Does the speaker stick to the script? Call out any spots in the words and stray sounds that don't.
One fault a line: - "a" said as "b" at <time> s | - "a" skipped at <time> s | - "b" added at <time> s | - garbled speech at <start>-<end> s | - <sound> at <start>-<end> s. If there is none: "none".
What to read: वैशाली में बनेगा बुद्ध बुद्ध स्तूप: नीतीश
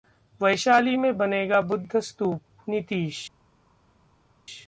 - "बुद्ध" skipped at 2.0 s